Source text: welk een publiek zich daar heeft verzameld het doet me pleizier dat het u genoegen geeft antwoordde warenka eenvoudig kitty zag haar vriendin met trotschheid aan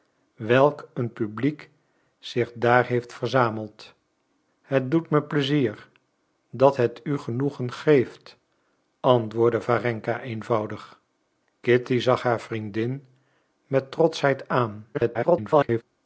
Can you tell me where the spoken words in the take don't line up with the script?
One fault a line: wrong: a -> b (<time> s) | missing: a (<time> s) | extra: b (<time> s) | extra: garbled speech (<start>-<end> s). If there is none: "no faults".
extra: garbled speech (14.9-15.8 s)